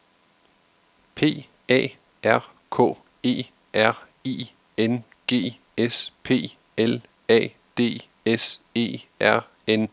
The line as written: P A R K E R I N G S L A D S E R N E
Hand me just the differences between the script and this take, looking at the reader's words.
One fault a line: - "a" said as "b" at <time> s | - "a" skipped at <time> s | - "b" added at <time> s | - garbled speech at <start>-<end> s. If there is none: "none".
- "P" added at 6.2 s